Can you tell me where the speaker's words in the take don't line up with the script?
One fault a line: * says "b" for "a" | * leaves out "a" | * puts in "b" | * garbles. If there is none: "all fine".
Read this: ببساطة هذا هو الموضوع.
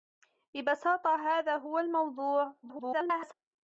* garbles